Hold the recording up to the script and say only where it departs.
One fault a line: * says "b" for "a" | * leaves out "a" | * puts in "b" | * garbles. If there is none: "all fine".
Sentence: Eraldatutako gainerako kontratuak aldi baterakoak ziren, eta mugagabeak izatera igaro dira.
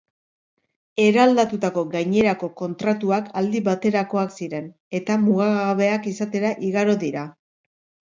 all fine